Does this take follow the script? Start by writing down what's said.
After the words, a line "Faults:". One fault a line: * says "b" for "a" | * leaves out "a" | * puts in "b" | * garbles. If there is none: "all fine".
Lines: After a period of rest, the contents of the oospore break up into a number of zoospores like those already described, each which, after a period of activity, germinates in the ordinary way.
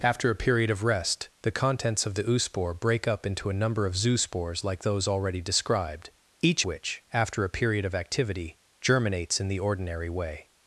After a period of rest, the contents of the oospore break up into a number of zoospores like those already described, each which, after a period of activity, germinates in the ordinary way.
Faults:
all fine